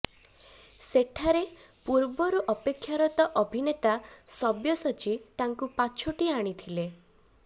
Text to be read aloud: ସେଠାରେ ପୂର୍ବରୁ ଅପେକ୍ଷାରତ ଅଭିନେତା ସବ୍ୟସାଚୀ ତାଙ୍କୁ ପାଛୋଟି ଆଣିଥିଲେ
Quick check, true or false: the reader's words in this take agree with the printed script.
true